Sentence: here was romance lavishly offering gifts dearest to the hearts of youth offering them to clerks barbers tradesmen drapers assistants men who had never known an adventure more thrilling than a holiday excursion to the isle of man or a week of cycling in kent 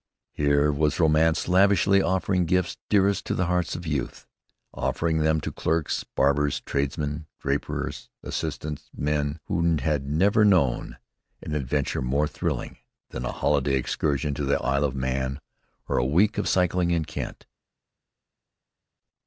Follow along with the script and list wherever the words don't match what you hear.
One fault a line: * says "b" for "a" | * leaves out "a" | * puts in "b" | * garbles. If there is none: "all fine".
all fine